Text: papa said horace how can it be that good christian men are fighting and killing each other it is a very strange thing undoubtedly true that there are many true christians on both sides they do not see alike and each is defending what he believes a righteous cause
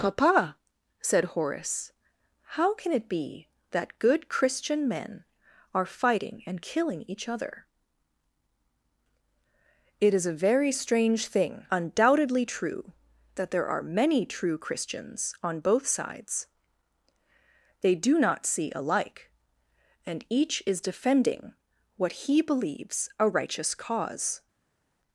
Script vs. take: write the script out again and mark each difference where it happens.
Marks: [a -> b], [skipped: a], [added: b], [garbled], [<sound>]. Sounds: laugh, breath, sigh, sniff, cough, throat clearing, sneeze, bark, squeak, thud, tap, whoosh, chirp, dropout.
papa said horace how can it be that good christian men are fighting and killing each other it is a very strange thing undoubtedly true that there are many true christians on both sides they do not see alike and each is defending what he believes a righteous cause